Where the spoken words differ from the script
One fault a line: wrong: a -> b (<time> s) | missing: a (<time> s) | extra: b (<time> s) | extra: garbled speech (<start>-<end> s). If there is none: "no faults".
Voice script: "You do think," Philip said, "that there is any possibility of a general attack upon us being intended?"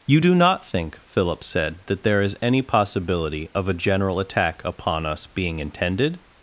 extra: not (0.3 s)